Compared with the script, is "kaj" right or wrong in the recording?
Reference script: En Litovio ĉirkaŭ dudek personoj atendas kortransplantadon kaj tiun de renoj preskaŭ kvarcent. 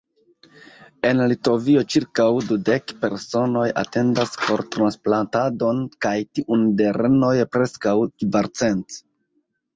right